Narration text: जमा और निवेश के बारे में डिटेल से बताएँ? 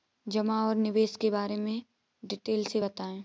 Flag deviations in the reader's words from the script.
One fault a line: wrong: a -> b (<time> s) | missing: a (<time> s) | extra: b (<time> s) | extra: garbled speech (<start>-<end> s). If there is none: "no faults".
no faults